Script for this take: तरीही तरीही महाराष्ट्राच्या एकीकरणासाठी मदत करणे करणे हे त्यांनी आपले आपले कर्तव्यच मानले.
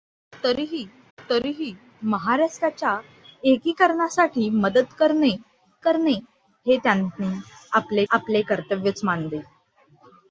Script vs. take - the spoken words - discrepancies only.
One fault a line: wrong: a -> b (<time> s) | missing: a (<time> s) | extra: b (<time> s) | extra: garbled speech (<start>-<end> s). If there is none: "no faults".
no faults